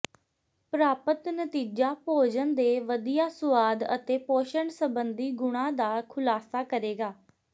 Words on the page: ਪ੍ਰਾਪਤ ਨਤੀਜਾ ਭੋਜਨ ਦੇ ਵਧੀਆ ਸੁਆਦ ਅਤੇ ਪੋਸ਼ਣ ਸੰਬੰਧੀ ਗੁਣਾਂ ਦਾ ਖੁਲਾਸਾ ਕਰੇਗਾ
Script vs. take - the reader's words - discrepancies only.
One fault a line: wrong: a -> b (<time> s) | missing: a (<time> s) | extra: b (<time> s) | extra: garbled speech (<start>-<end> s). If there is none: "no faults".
no faults